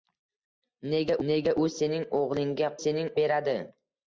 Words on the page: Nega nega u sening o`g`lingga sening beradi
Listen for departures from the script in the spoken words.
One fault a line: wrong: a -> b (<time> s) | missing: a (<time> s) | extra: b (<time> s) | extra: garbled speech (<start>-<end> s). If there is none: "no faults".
no faults